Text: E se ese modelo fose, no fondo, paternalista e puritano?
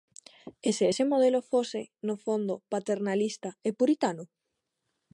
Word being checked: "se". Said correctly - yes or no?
yes